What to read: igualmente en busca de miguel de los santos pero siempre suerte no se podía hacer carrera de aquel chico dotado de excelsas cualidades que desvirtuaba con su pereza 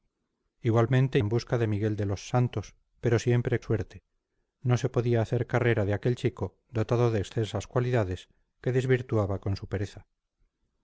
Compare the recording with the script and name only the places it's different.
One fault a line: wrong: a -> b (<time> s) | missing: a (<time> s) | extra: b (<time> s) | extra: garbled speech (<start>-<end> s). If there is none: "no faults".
no faults